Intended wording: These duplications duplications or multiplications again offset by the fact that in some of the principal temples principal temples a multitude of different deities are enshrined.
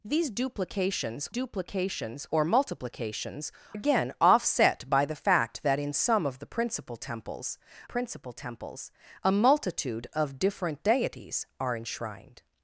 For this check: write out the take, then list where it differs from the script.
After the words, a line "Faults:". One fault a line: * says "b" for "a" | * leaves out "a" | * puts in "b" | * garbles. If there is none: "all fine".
These duplications duplications or multiplications again offset by the fact that in some of the principal temples principal temples a multitude of different deities are enshrined.
Faults:
all fine